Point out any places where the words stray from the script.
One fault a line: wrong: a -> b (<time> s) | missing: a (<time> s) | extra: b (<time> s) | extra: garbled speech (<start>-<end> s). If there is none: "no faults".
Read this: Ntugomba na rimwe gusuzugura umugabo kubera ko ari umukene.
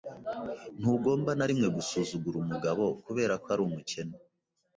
no faults